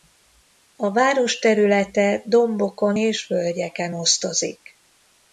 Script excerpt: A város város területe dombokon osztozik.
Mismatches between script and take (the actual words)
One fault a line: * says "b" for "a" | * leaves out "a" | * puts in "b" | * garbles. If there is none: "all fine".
* leaves out "város"
* puts in "és völgyeken"